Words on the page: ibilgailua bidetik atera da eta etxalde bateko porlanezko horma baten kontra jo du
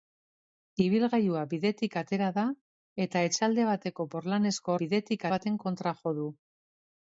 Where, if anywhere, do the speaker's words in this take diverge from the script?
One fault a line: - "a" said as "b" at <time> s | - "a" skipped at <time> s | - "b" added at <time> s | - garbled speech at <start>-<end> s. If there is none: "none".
- "horma" said as "bidetik" at 4.8 s